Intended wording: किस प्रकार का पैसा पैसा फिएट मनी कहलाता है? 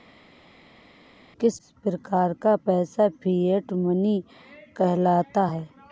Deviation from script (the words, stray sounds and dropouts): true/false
true